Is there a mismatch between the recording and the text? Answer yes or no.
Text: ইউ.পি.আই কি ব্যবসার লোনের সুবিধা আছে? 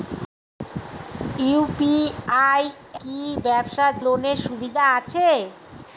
no